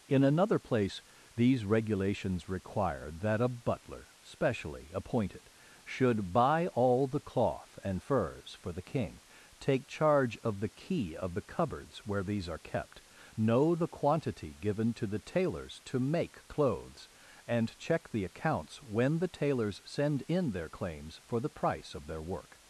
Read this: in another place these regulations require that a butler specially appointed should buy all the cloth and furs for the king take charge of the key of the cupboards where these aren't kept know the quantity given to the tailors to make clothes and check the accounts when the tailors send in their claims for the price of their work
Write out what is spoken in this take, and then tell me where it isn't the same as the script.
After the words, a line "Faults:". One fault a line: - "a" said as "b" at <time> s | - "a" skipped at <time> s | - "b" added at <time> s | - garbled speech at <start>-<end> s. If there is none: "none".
in another place these regulations require that a butler specially appointed should buy all the cloth and furs for the king take charge of the key of the cupboards where these are kept know the quantity given to the tailors to make clothes and check the accounts when the tailors send in their claims for the price of their work
Faults:
- "aren't" said as "are" at 12.5 s